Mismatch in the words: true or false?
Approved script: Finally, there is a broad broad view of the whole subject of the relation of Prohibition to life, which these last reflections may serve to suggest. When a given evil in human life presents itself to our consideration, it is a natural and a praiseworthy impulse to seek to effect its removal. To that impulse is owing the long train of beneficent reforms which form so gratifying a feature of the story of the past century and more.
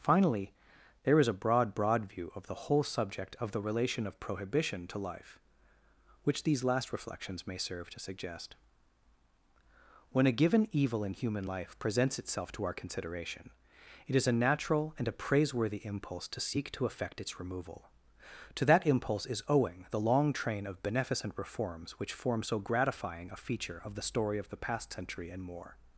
false